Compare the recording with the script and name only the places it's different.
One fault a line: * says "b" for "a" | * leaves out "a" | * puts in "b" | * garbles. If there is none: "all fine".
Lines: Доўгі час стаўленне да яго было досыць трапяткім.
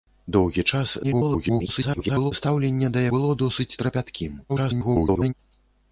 * garbles
* leaves out "яго"
* garbles